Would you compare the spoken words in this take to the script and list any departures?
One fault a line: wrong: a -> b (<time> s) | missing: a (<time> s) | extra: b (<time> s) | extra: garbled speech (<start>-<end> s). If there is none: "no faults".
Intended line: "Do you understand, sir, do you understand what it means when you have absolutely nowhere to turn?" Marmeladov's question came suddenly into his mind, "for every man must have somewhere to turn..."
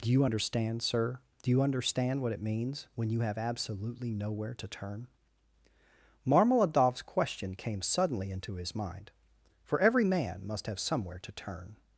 no faults